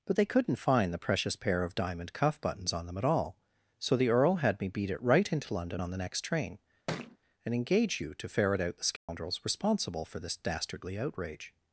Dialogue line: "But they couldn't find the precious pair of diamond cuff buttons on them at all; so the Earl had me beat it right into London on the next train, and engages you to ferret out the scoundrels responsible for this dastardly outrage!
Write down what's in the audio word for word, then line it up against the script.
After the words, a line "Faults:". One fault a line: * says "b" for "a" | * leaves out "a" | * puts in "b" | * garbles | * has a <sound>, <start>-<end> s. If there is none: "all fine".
"But they couldn't find the precious pair of diamond cuff buttons on them at all; so the Earl had me beat it right into London on the next train, and engage you to ferret out the scoundrels responsible for this dastardly outrage!
Faults:
* has a thud, 6.9-7.2 s
* says "engage" for "engages"
* has a dropout, 9.0-9.1 s